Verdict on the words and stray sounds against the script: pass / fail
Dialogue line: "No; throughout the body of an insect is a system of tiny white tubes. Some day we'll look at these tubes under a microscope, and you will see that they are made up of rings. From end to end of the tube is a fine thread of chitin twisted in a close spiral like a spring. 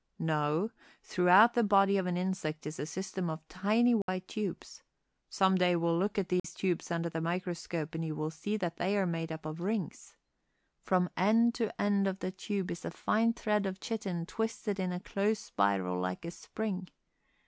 fail